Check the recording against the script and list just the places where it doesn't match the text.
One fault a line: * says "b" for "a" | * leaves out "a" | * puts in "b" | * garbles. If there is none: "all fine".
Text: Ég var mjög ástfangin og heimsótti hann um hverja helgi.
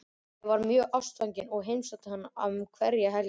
all fine